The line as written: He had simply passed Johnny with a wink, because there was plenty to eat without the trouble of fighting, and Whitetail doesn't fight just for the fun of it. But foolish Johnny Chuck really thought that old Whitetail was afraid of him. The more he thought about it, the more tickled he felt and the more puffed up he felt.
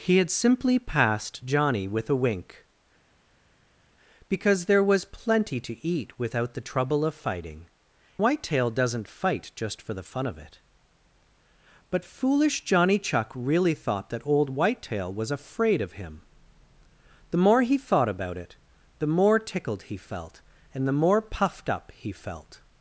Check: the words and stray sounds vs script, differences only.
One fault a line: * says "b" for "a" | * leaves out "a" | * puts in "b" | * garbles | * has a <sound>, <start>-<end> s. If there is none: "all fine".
* leaves out "and"